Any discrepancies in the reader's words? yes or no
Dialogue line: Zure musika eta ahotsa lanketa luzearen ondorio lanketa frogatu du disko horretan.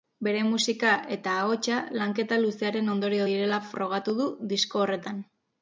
yes